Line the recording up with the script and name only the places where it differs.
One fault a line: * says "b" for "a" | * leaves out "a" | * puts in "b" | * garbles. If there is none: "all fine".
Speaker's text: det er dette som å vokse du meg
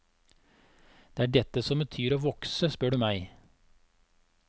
* puts in "betyr"
* puts in "spør"